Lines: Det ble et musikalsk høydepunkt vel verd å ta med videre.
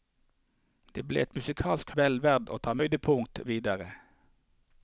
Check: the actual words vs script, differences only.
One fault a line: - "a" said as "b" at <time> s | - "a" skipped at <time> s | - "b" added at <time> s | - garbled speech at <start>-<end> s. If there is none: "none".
- "høydepunkt" skipped at 1.9 s
- "med" said as "høydepunkt" at 2.8 s